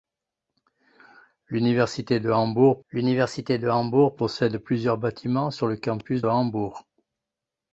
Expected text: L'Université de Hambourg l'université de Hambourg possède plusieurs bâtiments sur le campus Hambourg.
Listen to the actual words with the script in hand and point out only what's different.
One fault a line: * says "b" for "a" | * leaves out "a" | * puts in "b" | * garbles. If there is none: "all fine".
all fine